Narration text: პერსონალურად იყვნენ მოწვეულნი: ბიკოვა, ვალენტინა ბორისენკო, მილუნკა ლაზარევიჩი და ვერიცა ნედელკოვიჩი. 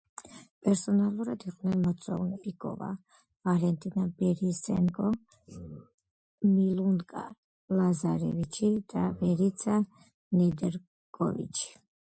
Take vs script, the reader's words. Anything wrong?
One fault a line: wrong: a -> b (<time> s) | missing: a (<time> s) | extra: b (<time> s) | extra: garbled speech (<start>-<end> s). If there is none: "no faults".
no faults